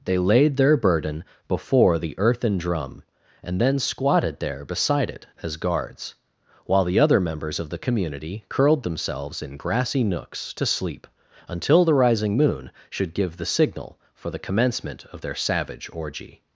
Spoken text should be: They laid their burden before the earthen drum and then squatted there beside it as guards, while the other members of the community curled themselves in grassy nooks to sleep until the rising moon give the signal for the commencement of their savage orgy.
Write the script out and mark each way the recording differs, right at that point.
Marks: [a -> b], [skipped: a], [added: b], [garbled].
They laid their burden before the earthen drum and then squatted there beside it as guards, while the other members of the community curled themselves in grassy nooks to sleep until the rising moon [added: should] give the signal for the commencement of their savage orgy.